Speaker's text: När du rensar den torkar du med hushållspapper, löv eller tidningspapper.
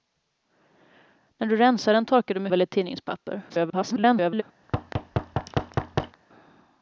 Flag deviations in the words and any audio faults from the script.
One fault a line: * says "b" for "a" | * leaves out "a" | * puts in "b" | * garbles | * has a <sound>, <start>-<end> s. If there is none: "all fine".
* leaves out "hushållspapper löv"
* garbles
* has a thud, 4.6-6.2 s